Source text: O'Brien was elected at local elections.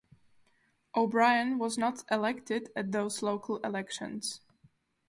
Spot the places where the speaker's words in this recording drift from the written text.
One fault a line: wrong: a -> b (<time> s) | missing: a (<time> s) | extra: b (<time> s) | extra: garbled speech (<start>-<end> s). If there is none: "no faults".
extra: not (1.8 s)
extra: those (2.9 s)